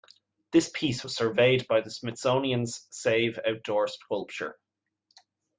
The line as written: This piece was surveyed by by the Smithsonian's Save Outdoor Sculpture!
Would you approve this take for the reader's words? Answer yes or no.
no